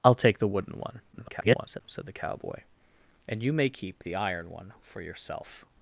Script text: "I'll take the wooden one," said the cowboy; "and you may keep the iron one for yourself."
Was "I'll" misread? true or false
false